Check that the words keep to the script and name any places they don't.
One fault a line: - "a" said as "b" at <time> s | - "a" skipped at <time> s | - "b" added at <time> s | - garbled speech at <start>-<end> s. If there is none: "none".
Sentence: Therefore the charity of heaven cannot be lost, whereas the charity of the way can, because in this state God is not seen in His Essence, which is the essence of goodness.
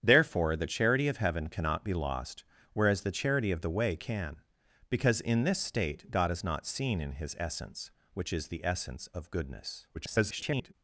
- garbled speech at 9.9-10.7 s